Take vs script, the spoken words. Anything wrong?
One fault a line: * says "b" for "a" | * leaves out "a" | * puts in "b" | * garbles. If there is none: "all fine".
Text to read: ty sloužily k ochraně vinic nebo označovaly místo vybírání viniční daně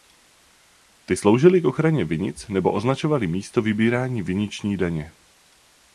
all fine